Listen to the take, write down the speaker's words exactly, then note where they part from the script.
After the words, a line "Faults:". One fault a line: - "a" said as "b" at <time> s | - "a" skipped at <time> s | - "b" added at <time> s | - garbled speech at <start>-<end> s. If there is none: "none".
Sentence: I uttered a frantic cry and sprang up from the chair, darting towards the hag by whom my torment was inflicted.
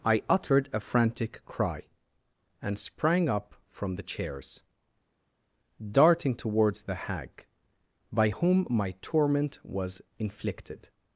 I uttered a frantic cry and sprang up from the chairs, darting towards the hag by whom my torment was inflicted.
Faults:
- "chair" said as "chairs" at 4.0 s